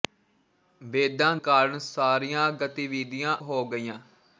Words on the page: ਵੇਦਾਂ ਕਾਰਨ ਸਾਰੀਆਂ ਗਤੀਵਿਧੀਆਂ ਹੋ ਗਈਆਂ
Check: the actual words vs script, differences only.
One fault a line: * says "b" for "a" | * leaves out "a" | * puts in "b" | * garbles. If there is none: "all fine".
all fine